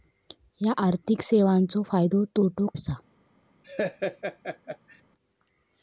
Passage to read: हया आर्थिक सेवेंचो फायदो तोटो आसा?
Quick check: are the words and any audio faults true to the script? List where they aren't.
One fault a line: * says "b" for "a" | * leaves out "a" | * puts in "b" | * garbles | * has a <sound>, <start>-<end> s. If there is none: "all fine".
* has a laugh, 3.6-5.0 s